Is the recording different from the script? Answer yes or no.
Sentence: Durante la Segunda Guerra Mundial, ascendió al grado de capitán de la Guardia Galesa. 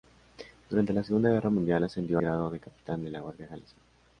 yes